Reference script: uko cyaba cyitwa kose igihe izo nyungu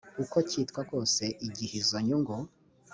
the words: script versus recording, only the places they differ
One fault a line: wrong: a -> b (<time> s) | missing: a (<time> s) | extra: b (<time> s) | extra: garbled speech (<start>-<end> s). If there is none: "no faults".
missing: cyaba (0.4 s)